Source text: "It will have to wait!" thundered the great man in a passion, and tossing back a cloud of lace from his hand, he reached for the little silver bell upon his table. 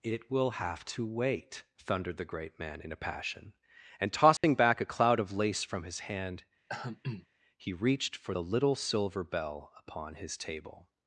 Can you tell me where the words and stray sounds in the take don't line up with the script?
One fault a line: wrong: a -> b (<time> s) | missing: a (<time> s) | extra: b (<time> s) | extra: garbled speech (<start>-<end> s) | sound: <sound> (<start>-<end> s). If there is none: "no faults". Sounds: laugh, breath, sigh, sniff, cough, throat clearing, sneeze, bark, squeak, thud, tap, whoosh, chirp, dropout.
sound: dropout (4.4-4.4 s)
sound: throat clearing (6.7-7.3 s)